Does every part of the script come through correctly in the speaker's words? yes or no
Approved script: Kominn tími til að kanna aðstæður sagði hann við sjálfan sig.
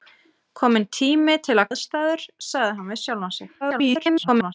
no